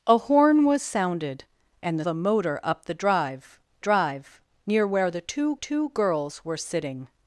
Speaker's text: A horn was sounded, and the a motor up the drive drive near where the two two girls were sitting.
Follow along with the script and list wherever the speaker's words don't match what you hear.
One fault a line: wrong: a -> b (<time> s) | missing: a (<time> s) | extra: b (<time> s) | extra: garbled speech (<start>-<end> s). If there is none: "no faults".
no faults